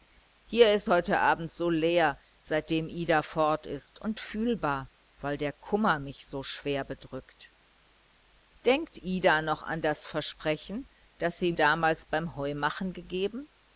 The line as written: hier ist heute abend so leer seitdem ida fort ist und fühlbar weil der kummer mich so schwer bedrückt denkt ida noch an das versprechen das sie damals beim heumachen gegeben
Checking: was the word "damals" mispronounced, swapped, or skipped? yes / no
no